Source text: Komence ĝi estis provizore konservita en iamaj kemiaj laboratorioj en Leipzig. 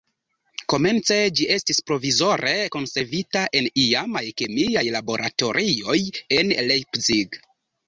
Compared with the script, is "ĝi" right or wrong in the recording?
right